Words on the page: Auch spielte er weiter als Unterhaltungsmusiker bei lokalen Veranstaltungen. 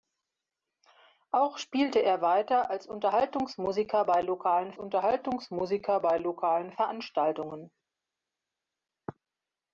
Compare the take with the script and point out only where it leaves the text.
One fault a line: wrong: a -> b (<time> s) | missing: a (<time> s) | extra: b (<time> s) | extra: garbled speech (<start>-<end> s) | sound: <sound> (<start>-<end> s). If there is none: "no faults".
extra: Unterhaltungsmusiker bei lokalen (4.8 s)